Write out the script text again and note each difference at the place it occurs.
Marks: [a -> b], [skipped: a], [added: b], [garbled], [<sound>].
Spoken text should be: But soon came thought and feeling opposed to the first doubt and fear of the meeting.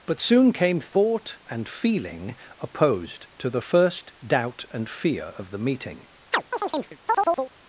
But soon came thought and feeling opposed to the first doubt and fear of the meeting. [chirp]